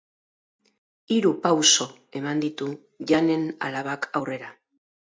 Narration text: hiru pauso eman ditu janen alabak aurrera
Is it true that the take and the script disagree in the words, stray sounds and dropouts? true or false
false